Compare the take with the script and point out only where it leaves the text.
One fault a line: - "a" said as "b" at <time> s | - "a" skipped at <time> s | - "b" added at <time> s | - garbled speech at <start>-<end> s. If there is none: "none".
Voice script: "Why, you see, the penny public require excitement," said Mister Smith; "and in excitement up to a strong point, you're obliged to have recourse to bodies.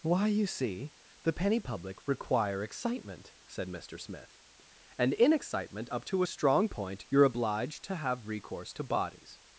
none